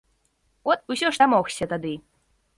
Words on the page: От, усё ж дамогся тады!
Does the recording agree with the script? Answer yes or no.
yes